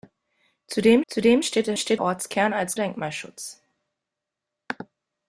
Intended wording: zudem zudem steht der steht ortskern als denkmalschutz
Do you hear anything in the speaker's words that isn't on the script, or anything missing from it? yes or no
no